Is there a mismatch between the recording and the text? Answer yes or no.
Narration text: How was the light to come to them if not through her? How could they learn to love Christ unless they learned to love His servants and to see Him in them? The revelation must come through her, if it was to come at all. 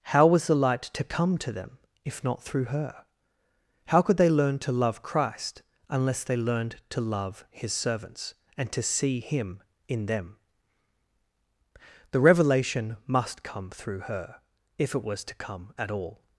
no